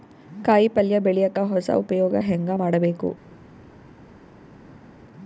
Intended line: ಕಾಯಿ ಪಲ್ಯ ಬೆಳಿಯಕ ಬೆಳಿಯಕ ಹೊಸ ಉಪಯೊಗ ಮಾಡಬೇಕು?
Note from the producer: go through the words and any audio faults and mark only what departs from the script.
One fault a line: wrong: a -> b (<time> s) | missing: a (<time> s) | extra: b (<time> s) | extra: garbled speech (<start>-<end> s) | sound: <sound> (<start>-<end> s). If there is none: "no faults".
missing: ಬೆಳಿಯಕ (1.4 s)
extra: ಹೆಂಗ (2.2 s)